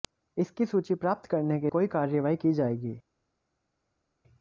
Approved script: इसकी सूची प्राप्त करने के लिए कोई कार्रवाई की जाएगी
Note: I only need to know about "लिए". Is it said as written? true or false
false